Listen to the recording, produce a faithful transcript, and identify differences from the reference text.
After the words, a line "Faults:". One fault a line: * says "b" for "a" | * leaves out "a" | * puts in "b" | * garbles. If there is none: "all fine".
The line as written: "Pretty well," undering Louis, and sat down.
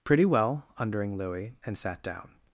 "Pretty well," undering Louis, and sat down.
Faults:
all fine